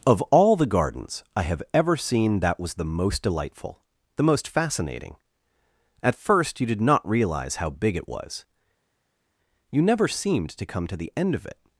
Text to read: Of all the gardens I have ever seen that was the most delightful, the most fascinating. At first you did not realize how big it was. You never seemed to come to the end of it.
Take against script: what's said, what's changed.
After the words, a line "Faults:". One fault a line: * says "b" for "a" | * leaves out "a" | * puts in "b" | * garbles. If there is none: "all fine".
Of all the gardens I have ever seen that was the most delightful, the most fascinating. At first you did not realize how big it was. You never seemed to come to the end of it.
Faults:
all fine